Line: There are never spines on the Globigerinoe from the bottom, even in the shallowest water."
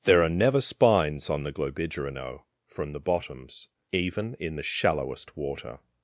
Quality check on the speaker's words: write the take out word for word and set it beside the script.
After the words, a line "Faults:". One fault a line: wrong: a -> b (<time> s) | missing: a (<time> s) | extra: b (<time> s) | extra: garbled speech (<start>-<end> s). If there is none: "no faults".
There are never spines on the Globigerinoe from the bottoms, even in the shallowest water."
Faults:
wrong: bottom -> bottoms (3.0 s)